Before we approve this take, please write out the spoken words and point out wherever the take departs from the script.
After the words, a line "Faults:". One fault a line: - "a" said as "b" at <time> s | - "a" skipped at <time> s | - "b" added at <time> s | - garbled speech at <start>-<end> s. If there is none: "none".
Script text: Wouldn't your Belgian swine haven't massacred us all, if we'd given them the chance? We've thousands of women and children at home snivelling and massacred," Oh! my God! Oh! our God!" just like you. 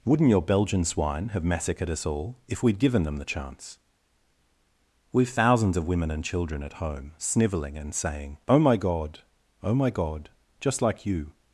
Wouldn't your Belgian swine have massacred us all, if we'd given them the chance? We've thousands of women and children at home snivelling and saying," Oh! my God! Oh! my God!" just like you.
Faults:
- "haven't" said as "have" at 1.3 s
- "massacred" said as "saying" at 7.9 s
- "our" said as "my" at 9.8 s